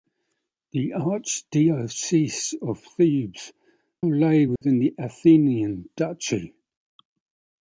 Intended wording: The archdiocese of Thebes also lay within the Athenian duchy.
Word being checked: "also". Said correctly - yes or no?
no